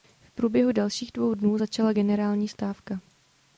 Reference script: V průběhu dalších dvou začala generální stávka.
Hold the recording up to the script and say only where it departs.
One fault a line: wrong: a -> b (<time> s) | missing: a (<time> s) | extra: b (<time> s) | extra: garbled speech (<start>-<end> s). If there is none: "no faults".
extra: dnů (1.3 s)